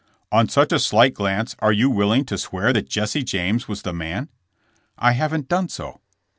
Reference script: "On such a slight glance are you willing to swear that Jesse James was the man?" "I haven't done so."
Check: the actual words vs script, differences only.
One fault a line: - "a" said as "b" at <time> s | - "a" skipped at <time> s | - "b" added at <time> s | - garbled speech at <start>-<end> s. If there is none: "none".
none